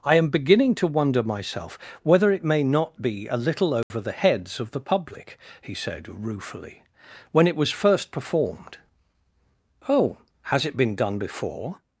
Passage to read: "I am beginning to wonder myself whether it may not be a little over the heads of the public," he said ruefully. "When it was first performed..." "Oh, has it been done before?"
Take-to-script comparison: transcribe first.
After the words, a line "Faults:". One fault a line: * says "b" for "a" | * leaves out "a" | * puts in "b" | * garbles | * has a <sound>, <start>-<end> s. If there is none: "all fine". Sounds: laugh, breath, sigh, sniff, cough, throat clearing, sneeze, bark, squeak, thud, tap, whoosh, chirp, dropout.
"I am beginning to wonder myself whether it may not be a little over the heads of the public," he said ruefully. "When it was first performed..." "Oh, has it been done before?"
Faults:
* has a dropout, 3.8-3.9 s